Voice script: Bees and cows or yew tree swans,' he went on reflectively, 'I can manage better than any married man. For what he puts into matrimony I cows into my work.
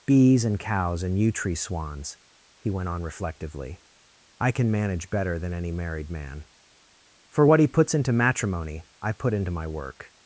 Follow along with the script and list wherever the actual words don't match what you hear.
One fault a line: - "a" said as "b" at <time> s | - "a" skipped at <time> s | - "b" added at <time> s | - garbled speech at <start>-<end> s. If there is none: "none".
- "or" said as "and" at 1.0 s
- "cows" said as "put" at 9.1 s